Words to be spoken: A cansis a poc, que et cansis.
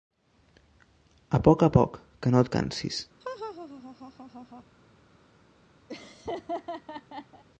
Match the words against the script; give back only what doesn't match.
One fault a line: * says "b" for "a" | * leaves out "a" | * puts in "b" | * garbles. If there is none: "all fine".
* says "poc" for "cansis"
* puts in "no"